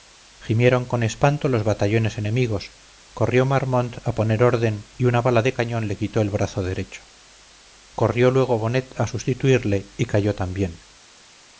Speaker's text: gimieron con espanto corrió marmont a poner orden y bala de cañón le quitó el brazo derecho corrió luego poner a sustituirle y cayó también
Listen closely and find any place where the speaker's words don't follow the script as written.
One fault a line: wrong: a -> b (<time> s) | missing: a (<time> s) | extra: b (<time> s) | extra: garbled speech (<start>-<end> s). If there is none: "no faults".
extra: los batallones enemigos (1.5 s)
extra: una (5.0 s)
wrong: poner -> bonnet (8.6 s)